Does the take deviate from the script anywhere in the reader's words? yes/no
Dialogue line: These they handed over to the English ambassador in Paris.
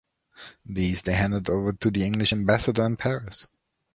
no